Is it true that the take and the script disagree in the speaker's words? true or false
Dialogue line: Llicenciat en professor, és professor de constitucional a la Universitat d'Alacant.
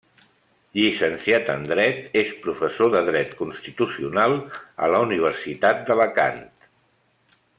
true